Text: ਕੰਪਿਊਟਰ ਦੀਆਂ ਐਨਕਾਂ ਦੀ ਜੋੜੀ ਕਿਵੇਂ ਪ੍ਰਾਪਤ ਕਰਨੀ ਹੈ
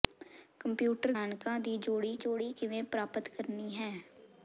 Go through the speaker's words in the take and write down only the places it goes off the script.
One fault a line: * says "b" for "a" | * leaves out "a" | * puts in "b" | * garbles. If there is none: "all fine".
* leaves out "ਦੀਆਂ"
* puts in "ਜੋੜੀ"